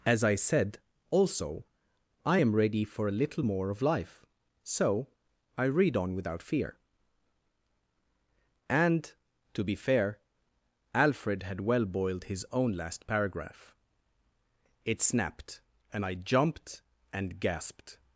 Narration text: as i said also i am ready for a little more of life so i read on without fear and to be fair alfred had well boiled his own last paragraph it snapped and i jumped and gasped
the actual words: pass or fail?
pass